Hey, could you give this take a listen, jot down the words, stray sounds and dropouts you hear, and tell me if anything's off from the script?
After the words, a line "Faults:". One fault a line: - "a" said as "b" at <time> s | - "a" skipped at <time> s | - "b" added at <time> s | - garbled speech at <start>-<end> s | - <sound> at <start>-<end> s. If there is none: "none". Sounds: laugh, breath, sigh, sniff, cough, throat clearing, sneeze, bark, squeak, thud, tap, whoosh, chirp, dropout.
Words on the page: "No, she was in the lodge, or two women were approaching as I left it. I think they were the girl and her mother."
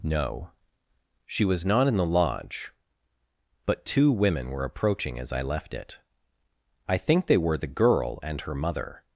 "No, she was not in the lodge, but two women were approaching as I left it. I think they were the girl and her mother."
Faults:
- "not" added at 1.6 s
- "or" said as "but" at 3.7 s